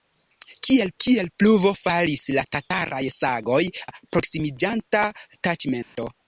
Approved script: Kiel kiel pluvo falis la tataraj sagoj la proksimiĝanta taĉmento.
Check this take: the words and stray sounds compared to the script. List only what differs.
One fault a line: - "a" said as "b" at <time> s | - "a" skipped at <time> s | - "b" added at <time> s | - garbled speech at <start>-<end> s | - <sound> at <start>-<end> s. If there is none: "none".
- dropout at 5.8-6.0 s